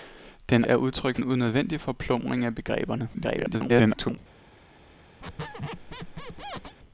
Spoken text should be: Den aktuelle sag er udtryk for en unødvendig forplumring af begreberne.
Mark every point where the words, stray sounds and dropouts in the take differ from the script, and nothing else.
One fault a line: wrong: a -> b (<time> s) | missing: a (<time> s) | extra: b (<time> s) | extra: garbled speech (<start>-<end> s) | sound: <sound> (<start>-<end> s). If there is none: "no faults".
missing: aktuelle sag (0.7 s)
missing: for (1.2 s)
extra: garbled speech (3.1-4.2 s)
sound: squeak (5.2-6.8 s)